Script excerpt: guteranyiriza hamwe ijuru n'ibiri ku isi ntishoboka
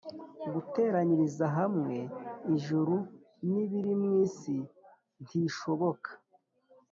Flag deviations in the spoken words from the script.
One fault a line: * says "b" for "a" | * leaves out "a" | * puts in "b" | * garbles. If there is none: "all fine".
* says "mu" for "ku"